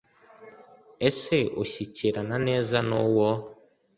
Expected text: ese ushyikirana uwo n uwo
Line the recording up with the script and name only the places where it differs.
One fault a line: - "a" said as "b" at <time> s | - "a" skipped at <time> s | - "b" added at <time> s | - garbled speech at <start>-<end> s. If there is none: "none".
- "uwo" said as "neza" at 2.5 s